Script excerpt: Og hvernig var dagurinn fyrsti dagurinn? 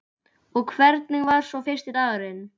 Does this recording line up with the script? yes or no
no